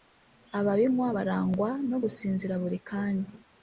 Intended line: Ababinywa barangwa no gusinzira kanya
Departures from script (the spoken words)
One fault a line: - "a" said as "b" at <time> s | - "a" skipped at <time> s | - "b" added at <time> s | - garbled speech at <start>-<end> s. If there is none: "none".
- "buri" added at 2.6 s